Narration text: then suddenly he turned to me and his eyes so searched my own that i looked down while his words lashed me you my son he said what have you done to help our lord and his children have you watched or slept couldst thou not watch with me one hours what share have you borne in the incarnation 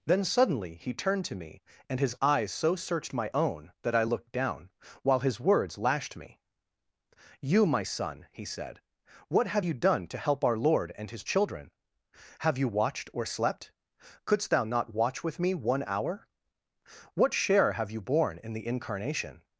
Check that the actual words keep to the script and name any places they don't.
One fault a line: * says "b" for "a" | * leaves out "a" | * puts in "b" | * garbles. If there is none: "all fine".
* says "hour" for "hours"